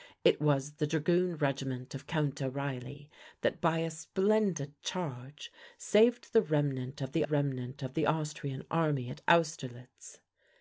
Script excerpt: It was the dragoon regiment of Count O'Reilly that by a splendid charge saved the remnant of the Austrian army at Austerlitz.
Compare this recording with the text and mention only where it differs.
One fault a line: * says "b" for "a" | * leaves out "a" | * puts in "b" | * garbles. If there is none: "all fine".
* puts in "remnant of the"